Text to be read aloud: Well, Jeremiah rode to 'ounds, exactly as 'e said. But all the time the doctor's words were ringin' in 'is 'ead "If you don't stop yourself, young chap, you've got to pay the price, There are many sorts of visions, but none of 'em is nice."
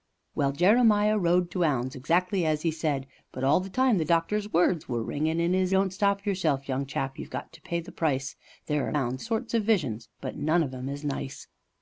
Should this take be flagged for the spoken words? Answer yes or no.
yes